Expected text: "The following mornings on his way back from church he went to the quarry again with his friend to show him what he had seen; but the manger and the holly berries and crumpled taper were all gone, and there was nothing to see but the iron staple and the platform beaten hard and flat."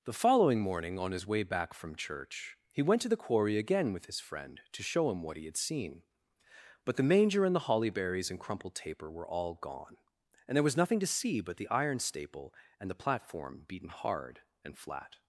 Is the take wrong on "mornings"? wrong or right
wrong